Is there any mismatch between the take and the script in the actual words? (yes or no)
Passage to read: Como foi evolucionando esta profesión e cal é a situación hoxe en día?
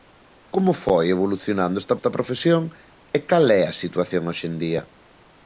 yes